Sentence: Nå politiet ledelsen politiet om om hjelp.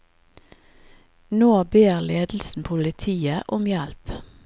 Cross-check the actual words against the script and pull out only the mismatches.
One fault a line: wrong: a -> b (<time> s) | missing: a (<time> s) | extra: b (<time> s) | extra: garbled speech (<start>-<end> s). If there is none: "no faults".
wrong: politiet -> ber (1.6 s)
missing: om (3.7 s)